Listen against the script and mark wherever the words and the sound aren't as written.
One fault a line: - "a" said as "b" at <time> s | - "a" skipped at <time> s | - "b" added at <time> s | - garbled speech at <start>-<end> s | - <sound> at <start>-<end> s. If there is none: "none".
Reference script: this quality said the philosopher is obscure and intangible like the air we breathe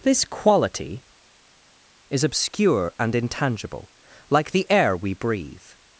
- "said the philosopher" skipped at 1.0 s